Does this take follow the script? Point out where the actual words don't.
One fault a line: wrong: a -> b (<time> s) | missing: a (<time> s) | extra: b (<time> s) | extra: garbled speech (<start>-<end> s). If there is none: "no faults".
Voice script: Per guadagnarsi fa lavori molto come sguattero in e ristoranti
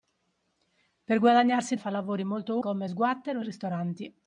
no faults